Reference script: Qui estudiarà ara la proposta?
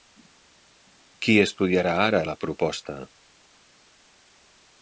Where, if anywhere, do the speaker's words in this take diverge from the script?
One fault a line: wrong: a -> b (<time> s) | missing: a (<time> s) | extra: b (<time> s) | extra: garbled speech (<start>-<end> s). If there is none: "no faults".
no faults